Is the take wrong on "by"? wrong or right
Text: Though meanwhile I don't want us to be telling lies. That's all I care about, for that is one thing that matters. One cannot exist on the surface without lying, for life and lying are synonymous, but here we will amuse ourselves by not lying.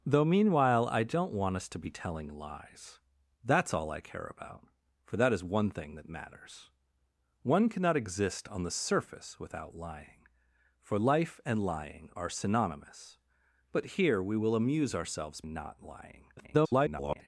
wrong